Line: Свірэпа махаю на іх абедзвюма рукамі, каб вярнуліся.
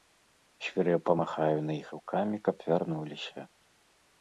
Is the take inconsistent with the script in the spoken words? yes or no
yes